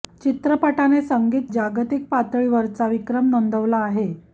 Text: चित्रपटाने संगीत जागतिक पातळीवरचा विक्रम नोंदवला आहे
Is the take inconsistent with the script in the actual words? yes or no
no